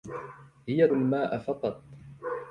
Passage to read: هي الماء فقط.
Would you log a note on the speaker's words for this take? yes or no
no